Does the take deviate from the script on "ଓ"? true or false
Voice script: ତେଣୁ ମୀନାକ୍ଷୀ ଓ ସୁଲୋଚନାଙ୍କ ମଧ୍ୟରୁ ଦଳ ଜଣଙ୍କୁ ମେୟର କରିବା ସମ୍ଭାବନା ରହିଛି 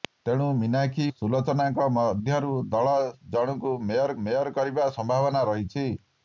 true